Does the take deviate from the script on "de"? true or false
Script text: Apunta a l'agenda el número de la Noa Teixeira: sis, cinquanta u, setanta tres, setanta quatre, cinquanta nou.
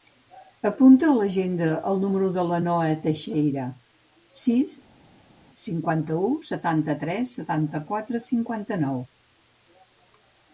false